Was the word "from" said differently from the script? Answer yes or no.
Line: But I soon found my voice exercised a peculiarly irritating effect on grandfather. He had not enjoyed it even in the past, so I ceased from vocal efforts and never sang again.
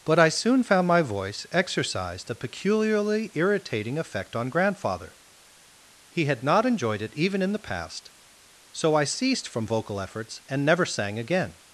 no